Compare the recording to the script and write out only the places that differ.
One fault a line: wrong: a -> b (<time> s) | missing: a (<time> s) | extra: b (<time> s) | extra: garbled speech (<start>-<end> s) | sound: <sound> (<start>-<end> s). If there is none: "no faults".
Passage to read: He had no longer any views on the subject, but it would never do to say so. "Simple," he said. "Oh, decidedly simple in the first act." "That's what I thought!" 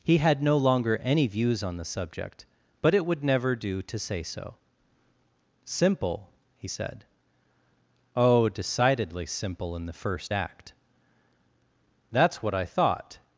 no faults